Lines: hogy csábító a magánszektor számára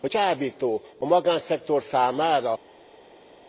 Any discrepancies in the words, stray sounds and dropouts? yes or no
no